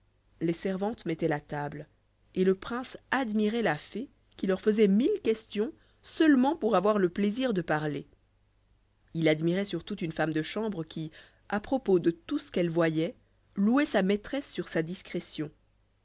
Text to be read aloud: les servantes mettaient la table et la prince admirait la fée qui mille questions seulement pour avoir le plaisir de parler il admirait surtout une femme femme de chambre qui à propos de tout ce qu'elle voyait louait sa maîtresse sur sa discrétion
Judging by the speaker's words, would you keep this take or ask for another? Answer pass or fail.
fail